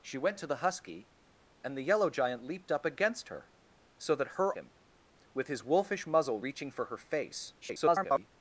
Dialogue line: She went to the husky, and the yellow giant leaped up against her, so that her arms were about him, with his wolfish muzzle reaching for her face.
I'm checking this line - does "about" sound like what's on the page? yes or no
no